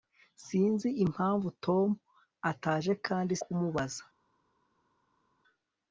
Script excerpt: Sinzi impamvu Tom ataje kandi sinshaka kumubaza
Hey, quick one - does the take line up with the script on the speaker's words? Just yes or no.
no